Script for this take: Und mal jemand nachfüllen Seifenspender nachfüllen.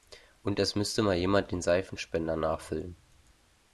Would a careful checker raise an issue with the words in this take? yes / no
yes